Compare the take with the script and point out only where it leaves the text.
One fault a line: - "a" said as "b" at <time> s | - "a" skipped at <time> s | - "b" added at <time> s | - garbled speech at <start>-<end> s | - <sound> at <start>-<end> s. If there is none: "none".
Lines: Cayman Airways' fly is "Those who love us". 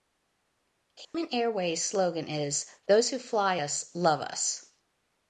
- dropout at 1.0-1.1 s
- "fly" said as "slogan" at 1.8 s
- "fly us" added at 3.2 s